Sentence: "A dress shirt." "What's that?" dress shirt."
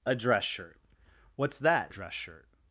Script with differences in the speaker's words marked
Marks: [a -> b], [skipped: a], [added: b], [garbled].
"A dress shirt." "What's that?" dress shirt."